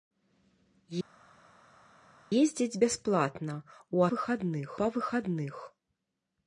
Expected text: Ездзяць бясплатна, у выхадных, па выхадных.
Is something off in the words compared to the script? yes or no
no